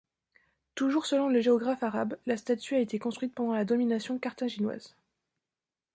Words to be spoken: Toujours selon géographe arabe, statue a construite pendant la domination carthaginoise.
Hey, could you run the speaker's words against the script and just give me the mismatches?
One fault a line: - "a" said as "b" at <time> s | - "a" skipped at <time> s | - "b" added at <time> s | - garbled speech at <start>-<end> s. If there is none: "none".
- "le" added at 1.3 s
- "la" added at 2.3 s
- "été" added at 2.8 s